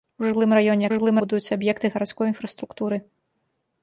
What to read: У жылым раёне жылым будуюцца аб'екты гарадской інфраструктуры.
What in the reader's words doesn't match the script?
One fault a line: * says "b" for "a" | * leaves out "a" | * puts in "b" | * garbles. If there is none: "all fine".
all fine